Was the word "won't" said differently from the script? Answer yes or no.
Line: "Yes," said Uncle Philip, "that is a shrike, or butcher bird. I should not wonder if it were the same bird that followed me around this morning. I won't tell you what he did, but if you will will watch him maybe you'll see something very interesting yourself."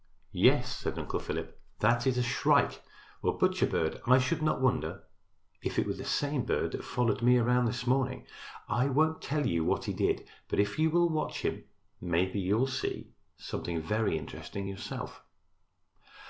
no